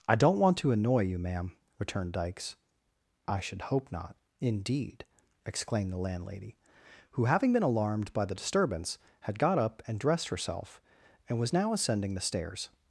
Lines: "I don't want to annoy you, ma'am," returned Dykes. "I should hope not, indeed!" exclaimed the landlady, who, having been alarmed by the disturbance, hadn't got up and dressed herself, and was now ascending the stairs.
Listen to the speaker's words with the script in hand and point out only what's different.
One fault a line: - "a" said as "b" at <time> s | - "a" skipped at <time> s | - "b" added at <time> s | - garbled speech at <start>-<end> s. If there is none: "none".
- "hadn't" said as "had" at 9.2 s